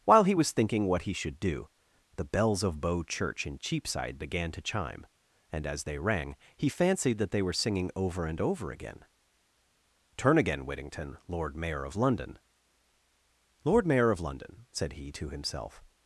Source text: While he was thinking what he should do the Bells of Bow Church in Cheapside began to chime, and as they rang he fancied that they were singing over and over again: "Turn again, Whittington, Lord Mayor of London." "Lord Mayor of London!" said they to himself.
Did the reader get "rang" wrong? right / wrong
right